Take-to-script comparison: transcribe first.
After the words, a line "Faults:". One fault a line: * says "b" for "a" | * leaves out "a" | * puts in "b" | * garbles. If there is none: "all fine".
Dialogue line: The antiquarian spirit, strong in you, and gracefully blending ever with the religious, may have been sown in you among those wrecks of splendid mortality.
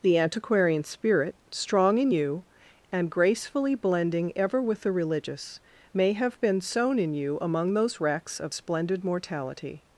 The antiquarian spirit, strong in you, and gracefully blending ever with the religious, may have been sown in you among those wrecks of splendid mortality.
Faults:
all fine